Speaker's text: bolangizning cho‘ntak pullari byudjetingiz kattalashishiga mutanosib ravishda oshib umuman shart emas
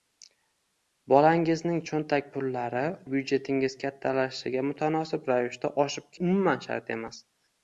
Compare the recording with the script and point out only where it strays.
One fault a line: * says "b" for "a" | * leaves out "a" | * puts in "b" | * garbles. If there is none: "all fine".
all fine